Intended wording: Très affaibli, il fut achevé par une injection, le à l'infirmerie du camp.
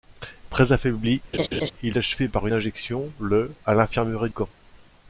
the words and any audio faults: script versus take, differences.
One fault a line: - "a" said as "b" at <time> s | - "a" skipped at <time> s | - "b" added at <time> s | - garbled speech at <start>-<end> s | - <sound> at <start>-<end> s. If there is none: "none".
- laugh at 1.3-1.7 s
- "fut" skipped at 1.9 s
- "une" skipped at 2.5 s
- "du" skipped at 4.3 s